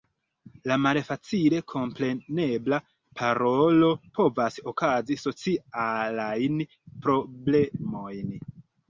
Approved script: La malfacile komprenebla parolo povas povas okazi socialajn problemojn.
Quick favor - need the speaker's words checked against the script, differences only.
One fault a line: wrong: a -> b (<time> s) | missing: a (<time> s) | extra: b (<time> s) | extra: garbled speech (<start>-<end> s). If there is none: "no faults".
missing: povas (4.6 s)